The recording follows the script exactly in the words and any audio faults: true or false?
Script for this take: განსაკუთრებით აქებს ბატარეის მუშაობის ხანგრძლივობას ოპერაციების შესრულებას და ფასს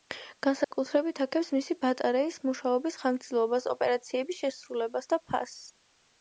false